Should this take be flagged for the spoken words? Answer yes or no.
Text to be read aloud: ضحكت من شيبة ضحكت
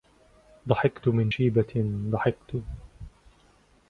no